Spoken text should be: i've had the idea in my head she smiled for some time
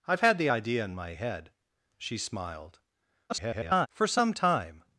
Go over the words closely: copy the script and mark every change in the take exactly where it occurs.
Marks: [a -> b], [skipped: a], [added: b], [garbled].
i've had the idea in my head she smiled [garbled] for some time